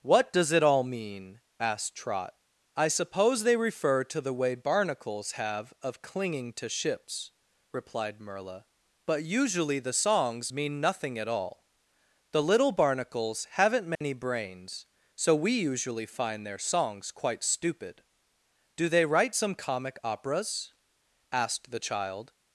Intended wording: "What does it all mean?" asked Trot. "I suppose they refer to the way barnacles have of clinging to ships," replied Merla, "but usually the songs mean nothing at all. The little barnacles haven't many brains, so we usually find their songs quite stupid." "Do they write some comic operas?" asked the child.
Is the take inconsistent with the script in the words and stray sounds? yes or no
yes